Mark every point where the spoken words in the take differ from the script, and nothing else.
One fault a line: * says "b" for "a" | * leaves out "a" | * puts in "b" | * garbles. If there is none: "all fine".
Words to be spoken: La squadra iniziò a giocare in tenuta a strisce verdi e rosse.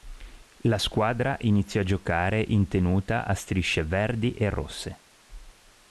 all fine